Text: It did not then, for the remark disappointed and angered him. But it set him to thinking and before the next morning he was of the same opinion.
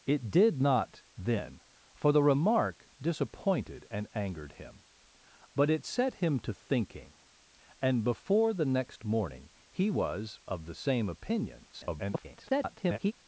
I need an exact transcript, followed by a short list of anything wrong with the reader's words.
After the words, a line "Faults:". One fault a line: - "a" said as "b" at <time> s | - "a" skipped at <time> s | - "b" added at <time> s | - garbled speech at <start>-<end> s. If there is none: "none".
It did not then, for the remark disappointed and angered him. But it set him to thinking and before the next morning he was of the same opinion. [garbled]
Faults:
- garbled speech at 11.7-13.1 s